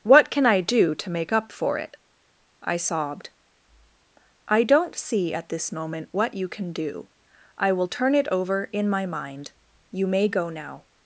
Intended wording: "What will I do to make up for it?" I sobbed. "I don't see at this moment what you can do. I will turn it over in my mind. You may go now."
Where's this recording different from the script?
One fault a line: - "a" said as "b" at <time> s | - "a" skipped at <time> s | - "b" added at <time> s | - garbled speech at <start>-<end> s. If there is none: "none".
- "will" said as "can" at 0.3 s